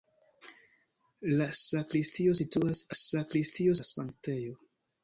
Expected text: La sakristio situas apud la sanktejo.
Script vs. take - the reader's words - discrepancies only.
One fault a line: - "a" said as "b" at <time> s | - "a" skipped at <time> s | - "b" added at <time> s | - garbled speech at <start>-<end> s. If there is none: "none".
- "apud" said as "sakristio" at 3.0 s